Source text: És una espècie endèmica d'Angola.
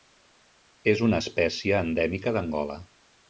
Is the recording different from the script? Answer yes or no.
no